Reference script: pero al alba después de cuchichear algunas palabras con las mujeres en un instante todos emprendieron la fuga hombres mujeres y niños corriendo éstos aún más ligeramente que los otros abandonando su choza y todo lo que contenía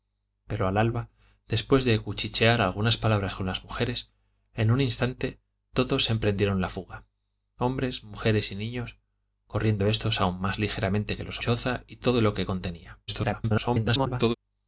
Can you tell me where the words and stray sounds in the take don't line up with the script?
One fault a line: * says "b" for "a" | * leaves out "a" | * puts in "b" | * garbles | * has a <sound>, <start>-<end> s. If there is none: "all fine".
* leaves out "otros abandonando su"
* garbles